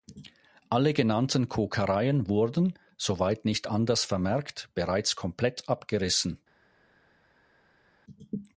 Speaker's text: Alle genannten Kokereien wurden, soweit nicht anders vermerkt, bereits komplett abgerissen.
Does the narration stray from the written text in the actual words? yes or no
no